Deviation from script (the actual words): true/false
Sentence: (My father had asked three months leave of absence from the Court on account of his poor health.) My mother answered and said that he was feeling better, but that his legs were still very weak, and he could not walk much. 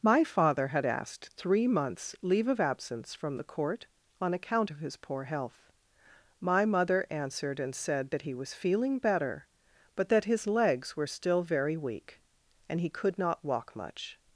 false